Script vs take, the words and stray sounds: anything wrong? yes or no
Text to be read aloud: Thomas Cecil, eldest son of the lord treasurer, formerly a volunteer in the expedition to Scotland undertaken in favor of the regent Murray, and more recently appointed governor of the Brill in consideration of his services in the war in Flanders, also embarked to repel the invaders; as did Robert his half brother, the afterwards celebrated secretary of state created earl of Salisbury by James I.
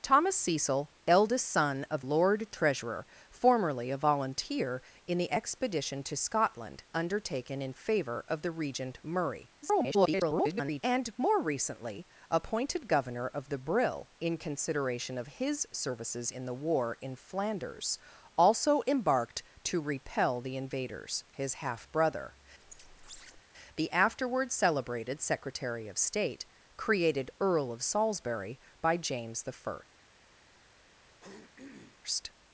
yes